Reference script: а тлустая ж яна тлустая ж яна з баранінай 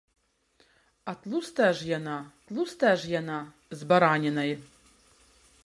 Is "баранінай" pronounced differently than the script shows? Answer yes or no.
no